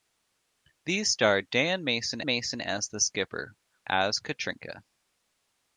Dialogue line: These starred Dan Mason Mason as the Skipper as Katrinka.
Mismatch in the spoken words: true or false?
false